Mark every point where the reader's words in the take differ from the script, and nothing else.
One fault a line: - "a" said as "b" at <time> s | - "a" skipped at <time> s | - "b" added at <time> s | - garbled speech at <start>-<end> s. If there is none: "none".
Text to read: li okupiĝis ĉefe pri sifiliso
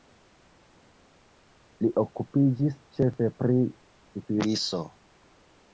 none